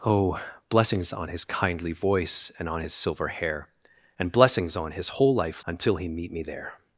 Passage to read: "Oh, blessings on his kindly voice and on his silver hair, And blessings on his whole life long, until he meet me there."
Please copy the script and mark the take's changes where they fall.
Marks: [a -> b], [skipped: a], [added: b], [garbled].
"Oh, blessings on his kindly voice and on his silver hair, And blessings on his whole life [skipped: long,] until he meet me there."